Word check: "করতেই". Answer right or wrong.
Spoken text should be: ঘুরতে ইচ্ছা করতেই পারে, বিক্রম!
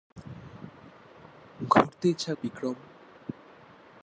wrong